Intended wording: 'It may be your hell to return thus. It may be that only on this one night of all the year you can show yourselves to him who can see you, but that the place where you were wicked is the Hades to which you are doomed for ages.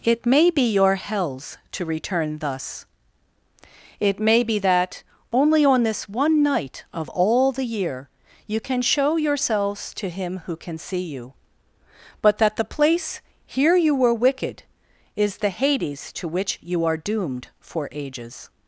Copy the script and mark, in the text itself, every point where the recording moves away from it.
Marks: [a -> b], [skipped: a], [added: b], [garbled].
'It may be your [hell -> hells] to return thus. It may be that only on this one night of all the year you can show yourselves to him who can see you, but that the place [where -> here] you were wicked is the Hades to which you are doomed for ages.